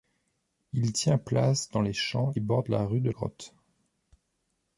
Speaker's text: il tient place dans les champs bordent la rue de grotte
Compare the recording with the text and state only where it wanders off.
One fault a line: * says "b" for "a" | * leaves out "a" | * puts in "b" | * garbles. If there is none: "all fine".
all fine